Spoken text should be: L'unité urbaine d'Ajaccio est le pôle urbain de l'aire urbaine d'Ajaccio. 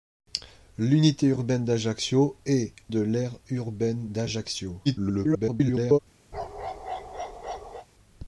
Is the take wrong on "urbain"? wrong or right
wrong